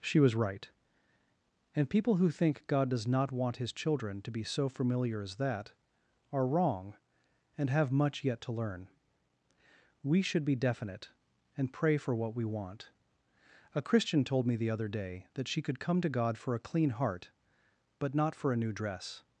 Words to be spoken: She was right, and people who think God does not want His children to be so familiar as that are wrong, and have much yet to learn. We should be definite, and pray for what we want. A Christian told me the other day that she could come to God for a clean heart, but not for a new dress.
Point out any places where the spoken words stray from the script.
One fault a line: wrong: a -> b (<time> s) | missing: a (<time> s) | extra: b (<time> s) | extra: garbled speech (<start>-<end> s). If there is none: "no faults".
no faults